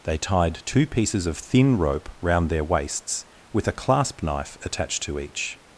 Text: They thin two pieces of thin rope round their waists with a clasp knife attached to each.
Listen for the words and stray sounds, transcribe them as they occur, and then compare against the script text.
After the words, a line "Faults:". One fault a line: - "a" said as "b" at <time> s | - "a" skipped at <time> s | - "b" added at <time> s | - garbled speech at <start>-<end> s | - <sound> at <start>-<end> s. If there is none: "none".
They tied two pieces of thin rope round their waists with a clasp knife attached to each.
Faults:
- "thin" said as "tied" at 0.2 s